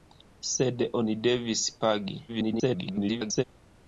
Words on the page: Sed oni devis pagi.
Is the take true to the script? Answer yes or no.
no